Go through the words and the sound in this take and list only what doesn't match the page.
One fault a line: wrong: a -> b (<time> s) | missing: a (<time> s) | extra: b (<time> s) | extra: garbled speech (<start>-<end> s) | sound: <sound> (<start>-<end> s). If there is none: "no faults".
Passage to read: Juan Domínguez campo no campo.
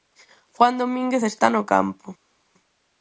wrong: campo -> está (1.2 s)